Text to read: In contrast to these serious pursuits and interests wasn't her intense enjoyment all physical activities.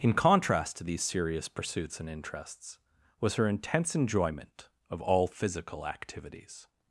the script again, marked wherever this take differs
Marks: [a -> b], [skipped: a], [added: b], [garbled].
In contrast to these serious pursuits and interests [wasn't -> was] her intense enjoyment [added: of] all physical activities.